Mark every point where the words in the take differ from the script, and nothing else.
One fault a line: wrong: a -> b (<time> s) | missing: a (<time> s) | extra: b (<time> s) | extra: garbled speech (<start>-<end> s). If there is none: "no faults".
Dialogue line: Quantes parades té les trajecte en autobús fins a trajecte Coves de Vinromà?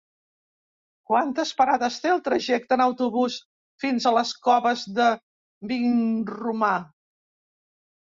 wrong: les -> el (2.1 s)
wrong: trajecte -> les (4.2 s)